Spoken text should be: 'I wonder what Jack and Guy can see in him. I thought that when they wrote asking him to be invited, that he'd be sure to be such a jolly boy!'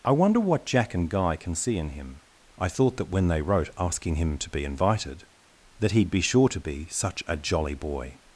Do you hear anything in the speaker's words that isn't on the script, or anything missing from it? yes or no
no